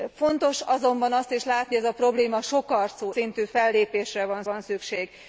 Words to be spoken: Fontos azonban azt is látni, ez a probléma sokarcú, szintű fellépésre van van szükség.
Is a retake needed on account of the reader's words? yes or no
no